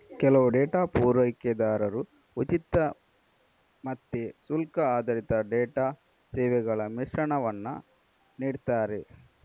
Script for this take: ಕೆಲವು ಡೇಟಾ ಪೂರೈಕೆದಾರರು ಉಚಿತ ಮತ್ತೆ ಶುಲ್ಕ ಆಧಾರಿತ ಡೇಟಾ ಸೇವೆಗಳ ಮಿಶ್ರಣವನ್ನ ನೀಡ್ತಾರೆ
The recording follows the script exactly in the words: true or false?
true